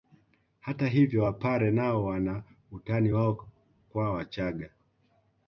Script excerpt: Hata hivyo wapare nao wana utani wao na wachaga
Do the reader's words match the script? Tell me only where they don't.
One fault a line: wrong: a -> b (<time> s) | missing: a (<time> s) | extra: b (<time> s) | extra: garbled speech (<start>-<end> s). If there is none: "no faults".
wrong: na -> kwa (3.9 s)